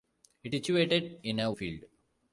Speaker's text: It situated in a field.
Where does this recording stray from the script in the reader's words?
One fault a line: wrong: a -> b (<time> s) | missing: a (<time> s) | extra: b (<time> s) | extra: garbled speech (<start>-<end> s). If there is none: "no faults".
no faults